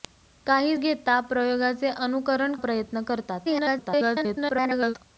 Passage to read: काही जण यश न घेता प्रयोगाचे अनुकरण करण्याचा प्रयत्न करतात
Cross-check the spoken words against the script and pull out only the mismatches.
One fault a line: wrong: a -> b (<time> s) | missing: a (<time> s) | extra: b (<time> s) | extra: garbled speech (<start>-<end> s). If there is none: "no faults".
missing: जण यश न (0.8 s)
missing: करण्याचा (2.5 s)
extra: garbled speech (3.4-4.9 s)